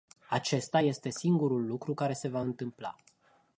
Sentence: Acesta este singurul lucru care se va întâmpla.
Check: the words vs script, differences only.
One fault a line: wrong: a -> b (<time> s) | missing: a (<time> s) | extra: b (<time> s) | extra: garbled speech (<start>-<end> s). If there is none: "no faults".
no faults